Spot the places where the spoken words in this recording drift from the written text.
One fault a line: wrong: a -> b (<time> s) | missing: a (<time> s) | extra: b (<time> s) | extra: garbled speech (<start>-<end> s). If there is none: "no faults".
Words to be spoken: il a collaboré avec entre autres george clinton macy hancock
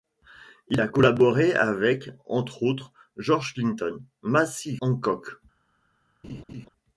no faults